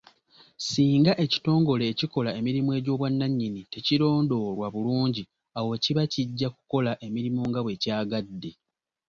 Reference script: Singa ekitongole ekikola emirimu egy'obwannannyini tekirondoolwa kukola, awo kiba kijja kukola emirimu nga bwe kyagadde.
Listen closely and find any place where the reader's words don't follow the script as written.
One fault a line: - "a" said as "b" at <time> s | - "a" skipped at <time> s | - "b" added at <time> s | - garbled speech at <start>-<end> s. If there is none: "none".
- "kukola" said as "bulungi" at 4.7 s